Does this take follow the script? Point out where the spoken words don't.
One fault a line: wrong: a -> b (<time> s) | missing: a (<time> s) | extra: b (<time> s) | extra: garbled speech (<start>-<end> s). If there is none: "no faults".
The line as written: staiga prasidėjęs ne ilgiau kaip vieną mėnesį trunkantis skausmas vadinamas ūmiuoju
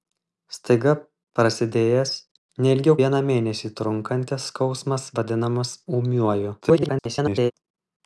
missing: kaip (3.0 s)
extra: garbled speech (6.6-7.5 s)